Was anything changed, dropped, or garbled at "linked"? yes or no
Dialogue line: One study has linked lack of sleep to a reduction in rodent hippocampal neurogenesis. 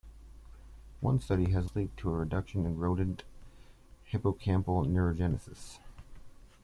yes